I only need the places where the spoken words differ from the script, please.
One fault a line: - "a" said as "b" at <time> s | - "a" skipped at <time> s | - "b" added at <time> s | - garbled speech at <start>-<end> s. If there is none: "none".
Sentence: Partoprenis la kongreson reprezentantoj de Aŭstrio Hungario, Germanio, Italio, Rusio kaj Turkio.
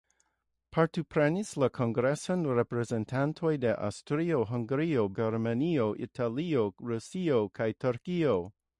none